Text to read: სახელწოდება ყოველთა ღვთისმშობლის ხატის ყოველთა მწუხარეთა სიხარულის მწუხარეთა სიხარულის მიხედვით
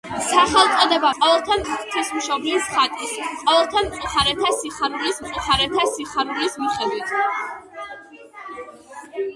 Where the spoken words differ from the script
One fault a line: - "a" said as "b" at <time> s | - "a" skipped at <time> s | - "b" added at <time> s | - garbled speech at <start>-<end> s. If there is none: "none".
none